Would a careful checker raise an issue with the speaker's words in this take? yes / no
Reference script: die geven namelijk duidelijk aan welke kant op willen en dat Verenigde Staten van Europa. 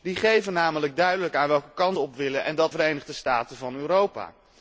no